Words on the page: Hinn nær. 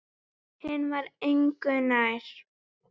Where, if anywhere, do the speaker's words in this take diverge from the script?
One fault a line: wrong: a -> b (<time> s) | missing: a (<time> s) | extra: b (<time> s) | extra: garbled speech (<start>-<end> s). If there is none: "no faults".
extra: var engu (0.9 s)